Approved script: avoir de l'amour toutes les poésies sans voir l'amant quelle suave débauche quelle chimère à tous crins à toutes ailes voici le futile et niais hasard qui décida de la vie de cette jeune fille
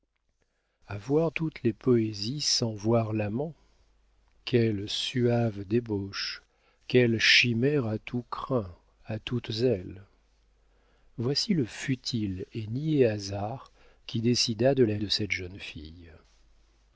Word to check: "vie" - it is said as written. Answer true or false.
false